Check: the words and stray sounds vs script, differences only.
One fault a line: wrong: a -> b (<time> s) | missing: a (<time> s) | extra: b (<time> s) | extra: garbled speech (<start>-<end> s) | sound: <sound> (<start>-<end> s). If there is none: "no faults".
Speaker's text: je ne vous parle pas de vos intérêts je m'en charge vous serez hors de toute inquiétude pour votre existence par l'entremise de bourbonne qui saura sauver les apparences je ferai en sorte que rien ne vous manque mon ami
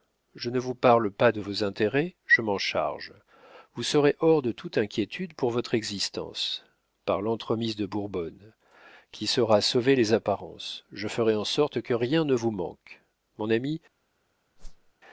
sound: whoosh (14.6-14.9 s)